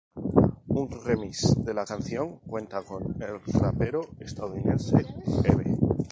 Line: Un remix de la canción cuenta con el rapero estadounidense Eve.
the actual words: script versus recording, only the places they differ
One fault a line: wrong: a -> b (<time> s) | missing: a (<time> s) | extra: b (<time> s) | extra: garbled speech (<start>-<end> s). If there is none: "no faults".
no faults